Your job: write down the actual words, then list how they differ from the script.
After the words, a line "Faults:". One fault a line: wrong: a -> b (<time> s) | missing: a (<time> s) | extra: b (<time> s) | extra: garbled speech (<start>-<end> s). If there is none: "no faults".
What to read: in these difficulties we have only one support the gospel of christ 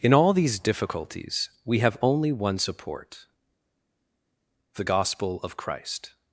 in all these difficulties we have only one support the gospel of christ
Faults:
extra: all (0.1 s)